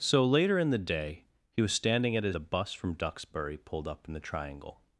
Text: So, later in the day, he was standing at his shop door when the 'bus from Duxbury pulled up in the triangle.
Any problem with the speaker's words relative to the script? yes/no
yes